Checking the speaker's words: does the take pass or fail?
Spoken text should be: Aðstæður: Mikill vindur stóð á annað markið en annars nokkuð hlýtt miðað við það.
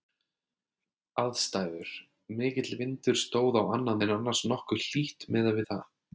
fail